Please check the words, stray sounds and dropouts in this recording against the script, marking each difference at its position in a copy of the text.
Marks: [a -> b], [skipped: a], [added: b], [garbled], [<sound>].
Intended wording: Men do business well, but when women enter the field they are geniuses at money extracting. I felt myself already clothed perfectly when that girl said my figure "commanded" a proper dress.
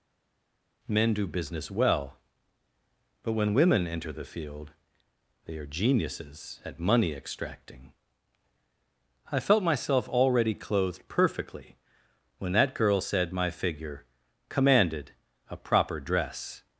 Men do business well, but when women enter the field they are geniuses at money extracting. I felt myself already clothed perfectly when that girl said my figure "commanded" a proper dress.